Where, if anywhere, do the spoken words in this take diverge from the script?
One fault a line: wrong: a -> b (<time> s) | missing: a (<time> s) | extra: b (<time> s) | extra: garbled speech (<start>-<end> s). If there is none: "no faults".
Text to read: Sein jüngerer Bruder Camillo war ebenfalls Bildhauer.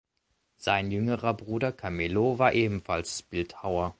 no faults